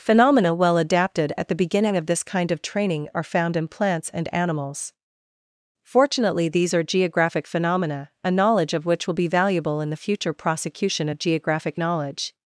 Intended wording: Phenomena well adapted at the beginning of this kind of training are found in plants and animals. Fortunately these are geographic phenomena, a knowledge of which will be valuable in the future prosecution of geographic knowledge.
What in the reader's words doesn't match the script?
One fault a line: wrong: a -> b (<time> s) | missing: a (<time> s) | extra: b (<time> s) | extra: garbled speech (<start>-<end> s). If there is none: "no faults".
no faults